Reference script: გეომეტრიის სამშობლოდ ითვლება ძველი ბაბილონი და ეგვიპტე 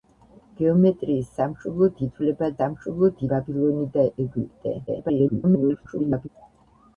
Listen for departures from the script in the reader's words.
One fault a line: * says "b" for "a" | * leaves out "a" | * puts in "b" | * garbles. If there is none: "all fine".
* says "სამშობლოდ" for "ძველი"
* garbles